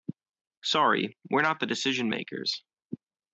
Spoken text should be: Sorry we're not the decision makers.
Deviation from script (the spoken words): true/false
false